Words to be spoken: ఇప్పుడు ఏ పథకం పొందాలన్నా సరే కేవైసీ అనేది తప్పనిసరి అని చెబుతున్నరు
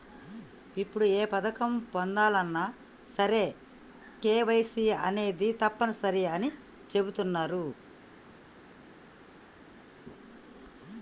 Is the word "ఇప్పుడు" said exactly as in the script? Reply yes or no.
yes